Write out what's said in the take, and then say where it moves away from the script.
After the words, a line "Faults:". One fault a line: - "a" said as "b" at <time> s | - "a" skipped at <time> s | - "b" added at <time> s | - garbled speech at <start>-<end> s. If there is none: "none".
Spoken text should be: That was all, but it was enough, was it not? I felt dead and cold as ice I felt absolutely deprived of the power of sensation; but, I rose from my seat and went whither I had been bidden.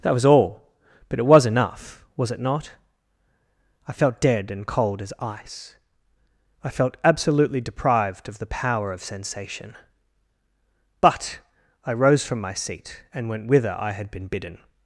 That was all, but it was enough, was it not? I felt dead and cold as ice I felt absolutely deprived of the power of sensation; but, I rose from my seat and went whither I had been bidden.
Faults:
none